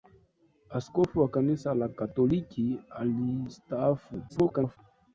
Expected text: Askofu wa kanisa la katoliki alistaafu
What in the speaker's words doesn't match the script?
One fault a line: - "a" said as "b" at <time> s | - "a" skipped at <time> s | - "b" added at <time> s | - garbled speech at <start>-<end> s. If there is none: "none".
- garbled speech at 4.3-4.8 s